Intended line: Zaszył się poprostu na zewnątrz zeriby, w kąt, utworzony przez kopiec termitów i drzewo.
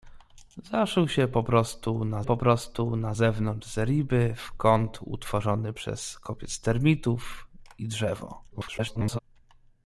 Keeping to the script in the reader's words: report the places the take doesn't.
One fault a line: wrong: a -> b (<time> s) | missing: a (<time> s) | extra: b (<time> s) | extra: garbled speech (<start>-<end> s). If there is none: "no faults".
extra: poprostu na (2.2 s)
extra: garbled speech (8.5-9.2 s)